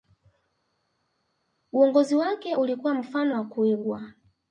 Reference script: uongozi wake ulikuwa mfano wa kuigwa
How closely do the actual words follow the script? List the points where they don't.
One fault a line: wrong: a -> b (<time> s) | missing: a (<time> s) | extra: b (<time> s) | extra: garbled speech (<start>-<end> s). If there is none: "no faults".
no faults